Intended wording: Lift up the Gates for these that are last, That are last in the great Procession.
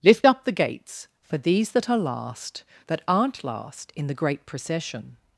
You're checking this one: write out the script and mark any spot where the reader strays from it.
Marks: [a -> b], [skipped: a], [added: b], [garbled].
Lift up the Gates for these that are last, That [are -> aren't] last in the great Procession.